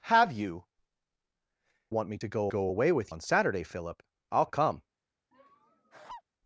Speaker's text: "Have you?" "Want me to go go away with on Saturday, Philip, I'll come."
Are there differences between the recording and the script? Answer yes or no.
no